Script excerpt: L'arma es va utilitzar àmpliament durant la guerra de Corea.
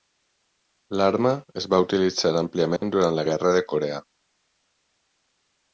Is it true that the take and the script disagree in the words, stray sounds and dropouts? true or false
true